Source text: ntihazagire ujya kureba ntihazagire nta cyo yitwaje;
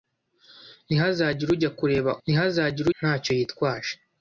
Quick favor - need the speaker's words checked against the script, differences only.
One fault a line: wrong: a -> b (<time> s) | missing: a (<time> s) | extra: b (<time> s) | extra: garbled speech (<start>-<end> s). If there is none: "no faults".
no faults